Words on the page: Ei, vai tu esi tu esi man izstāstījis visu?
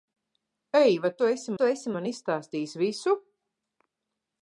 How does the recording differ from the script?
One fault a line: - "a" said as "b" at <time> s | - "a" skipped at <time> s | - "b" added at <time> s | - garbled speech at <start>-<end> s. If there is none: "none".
none